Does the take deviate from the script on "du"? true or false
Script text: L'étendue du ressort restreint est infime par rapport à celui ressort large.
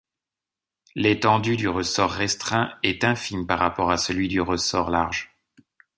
false